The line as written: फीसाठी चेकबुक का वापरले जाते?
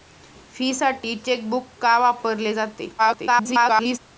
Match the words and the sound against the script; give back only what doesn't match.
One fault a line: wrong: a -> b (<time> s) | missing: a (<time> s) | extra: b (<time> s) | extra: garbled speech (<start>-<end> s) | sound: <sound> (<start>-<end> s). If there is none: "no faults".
extra: garbled speech (3.0-4.0 s)